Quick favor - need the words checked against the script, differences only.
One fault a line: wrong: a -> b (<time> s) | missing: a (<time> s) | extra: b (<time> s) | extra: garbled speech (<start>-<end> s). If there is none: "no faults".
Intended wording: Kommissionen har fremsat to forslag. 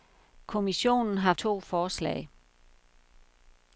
missing: fremsat (1.3 s)